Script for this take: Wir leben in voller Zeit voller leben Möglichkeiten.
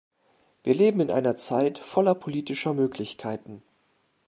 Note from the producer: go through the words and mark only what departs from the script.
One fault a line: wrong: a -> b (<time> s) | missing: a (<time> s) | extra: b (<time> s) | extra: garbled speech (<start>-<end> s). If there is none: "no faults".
wrong: voller -> einer (1.1 s)
wrong: leben -> politischer (2.1 s)